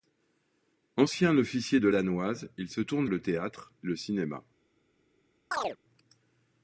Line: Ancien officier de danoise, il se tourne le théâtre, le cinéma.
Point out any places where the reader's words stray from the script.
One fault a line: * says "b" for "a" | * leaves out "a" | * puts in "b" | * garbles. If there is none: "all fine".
all fine